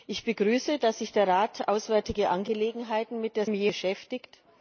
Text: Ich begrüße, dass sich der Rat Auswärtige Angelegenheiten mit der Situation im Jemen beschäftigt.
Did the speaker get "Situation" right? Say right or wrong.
wrong